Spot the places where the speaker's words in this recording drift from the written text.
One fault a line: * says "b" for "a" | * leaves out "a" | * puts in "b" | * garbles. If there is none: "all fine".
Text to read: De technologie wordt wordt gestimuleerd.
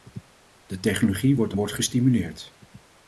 all fine